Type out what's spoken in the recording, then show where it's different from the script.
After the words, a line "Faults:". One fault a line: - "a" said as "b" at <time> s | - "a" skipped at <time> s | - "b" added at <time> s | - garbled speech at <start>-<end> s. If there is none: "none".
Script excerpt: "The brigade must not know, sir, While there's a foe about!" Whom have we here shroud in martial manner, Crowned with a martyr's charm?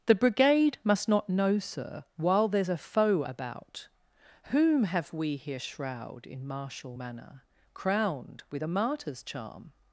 "The brigade must not know, sir, While there's a foe about!" Whom have we here shroud in martial manner, Crowned with a martyr's charm?
Faults:
none